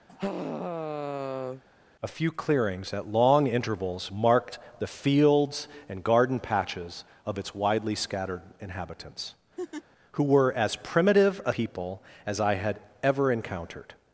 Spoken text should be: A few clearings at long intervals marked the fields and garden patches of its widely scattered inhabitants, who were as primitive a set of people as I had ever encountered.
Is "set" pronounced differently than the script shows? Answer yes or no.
yes